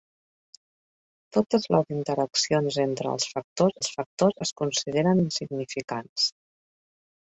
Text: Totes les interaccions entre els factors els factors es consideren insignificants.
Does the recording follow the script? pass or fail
pass